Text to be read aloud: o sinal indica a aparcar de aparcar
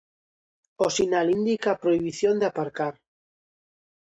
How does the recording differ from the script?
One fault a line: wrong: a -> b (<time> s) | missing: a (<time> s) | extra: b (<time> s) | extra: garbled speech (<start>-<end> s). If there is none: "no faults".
wrong: aparcar -> prohibición (1.8 s)